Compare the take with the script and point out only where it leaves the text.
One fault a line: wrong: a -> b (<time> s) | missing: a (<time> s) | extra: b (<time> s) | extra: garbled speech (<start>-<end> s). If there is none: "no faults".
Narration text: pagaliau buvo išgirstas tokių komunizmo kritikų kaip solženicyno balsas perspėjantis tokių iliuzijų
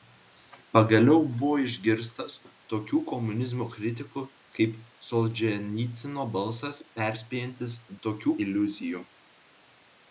no faults